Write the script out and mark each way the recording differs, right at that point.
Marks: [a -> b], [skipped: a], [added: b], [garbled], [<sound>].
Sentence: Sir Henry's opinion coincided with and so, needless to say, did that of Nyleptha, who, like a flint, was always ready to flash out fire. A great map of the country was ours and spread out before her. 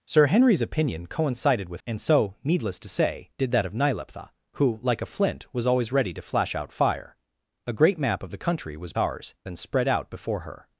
Sir Henry's opinion coincided with and so, needless to say, did that of Nyleptha, who, like a flint, was always ready to flash out fire. A great map of the country was ours and spread out before her.